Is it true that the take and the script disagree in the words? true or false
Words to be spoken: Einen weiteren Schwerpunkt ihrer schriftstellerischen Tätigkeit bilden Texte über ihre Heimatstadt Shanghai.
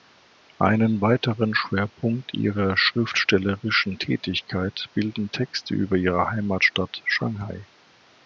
false